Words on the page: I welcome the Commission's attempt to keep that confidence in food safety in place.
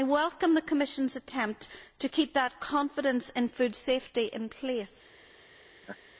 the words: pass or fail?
pass